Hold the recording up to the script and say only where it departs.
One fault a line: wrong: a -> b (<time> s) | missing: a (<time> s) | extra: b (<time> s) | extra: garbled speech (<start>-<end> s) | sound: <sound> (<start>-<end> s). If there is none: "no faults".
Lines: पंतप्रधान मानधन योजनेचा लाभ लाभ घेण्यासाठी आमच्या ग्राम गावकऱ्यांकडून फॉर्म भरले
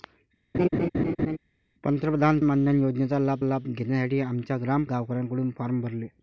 sound: laugh (0.5-1.4 s)